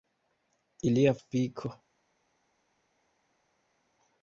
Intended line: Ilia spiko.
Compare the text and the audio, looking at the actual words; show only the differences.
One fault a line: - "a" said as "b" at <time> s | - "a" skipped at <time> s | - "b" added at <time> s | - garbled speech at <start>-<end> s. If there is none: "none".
none